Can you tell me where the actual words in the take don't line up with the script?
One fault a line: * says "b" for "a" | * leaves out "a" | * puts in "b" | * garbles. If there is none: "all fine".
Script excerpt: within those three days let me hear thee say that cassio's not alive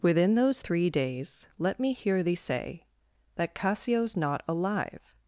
all fine